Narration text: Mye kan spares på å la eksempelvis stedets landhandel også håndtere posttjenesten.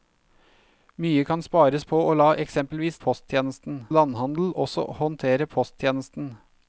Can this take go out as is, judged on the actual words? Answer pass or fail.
fail